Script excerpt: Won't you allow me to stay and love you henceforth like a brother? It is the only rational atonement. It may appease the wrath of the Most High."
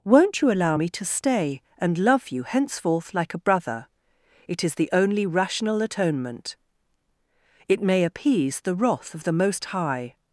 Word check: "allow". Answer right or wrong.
right